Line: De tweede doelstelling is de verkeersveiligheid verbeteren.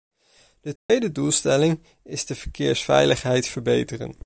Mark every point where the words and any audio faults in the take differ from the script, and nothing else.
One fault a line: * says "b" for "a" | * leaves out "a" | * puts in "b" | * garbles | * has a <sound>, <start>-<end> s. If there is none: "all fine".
* has a dropout, 0.8-0.9 s